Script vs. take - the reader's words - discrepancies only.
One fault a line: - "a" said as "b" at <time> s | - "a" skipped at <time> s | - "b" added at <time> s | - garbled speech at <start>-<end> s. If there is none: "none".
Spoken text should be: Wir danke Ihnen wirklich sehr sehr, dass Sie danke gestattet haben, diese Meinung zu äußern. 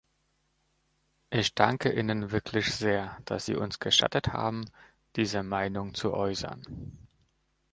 - "Wir" said as "Ich" at 1.3 s
- "sehr" skipped at 3.2 s
- "danke" said as "uns" at 3.6 s